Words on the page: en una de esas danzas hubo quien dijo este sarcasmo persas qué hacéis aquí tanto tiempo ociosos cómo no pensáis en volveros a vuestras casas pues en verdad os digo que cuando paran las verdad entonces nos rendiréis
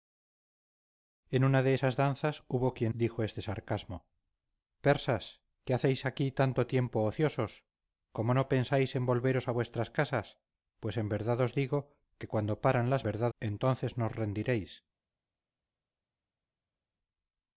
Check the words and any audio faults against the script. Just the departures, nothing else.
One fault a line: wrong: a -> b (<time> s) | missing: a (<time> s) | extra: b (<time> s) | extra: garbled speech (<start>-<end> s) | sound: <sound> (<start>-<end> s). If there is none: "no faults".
no faults